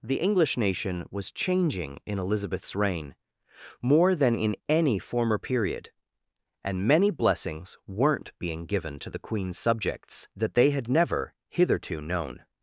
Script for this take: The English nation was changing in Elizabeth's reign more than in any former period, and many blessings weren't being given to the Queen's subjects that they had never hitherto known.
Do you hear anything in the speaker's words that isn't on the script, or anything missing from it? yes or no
no